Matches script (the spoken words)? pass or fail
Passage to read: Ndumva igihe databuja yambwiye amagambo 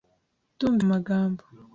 fail